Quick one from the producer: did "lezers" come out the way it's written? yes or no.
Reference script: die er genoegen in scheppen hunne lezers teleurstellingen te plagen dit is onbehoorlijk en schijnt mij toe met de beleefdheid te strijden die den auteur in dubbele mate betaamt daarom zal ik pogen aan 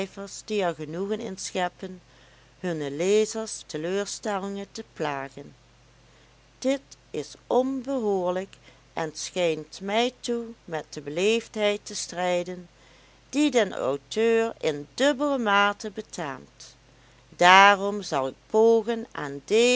yes